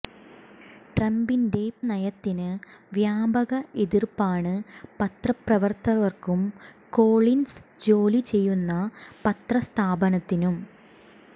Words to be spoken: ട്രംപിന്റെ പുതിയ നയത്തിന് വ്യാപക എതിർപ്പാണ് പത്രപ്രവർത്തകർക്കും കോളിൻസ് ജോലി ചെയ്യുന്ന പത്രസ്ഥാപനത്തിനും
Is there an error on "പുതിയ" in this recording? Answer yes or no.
yes